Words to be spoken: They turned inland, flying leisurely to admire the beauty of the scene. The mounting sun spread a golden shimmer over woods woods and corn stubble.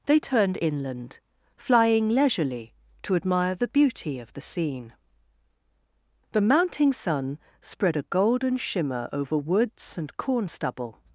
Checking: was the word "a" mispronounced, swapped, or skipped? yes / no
no